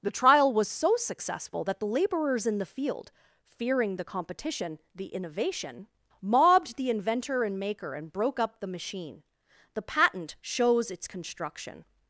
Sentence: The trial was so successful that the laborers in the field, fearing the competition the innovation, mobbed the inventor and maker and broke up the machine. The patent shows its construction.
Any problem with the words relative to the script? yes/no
no